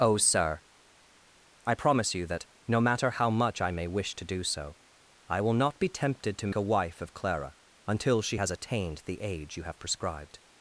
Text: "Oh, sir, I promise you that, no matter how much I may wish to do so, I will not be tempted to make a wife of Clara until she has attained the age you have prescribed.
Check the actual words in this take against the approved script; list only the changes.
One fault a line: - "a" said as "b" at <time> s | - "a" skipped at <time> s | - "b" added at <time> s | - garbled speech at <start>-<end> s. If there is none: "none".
- "make" skipped at 6.5 s